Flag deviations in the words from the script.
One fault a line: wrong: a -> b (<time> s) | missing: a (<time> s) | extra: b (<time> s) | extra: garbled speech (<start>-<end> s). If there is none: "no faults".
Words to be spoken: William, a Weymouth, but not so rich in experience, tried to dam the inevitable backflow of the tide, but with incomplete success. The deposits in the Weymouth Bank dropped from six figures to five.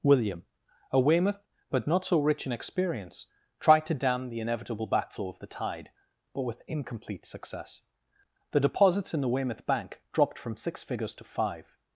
no faults